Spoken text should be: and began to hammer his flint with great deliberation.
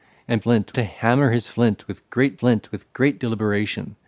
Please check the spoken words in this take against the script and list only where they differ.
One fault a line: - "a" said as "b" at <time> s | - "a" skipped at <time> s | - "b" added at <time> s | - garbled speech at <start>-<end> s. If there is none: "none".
- "began" said as "flint" at 0.4 s
- "flint with great" added at 2.4 s